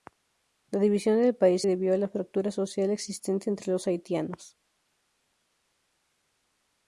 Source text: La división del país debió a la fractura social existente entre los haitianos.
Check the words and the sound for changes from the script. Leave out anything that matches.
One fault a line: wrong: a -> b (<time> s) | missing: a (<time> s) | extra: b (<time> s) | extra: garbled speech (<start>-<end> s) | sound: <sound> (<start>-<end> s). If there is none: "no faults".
no faults